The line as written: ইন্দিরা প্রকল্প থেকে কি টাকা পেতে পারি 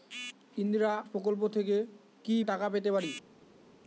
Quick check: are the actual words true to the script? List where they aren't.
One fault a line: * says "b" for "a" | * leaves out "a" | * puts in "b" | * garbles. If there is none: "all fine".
all fine